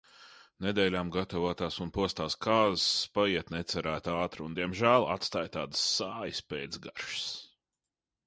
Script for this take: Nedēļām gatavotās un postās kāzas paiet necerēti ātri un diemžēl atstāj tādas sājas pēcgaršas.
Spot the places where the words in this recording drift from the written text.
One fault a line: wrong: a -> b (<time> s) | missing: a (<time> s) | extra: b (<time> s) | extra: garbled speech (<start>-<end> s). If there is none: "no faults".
no faults